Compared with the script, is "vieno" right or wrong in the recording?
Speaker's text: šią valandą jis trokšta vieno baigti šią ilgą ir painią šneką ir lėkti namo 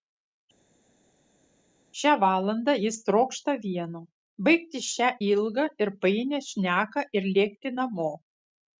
right